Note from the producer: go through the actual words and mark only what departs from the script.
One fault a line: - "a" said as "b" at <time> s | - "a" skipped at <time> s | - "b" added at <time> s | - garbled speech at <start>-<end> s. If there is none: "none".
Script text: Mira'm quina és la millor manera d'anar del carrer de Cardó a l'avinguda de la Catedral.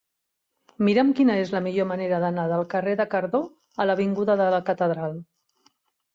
none